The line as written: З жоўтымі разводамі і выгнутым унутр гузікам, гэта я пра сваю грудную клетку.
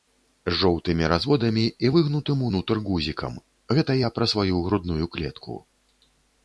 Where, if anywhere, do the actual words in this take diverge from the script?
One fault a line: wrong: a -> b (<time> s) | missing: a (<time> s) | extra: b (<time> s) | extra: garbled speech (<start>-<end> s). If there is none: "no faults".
no faults